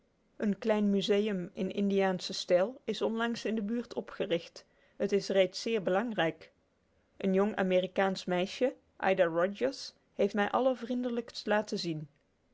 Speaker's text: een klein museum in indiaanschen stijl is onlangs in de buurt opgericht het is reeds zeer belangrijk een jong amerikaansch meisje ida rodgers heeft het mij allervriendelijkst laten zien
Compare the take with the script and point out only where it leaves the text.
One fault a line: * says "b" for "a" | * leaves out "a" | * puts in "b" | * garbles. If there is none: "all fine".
* leaves out "het"